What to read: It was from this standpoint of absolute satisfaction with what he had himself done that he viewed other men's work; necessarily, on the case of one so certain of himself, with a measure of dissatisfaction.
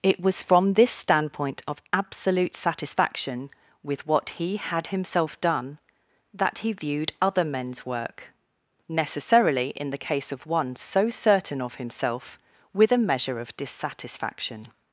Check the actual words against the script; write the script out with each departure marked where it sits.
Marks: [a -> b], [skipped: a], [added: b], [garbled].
It was from this standpoint of absolute satisfaction with what he had himself done that he viewed other men's work; necessarily, [on -> in] the case of one so certain of himself, with a measure of dissatisfaction.